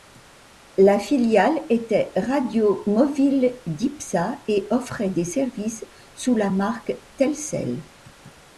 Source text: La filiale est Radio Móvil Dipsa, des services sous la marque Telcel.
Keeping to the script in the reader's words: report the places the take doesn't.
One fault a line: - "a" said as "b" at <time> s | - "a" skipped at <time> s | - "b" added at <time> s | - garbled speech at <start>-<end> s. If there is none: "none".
- "est" said as "était" at 1.7 s
- "et offrait" added at 4.5 s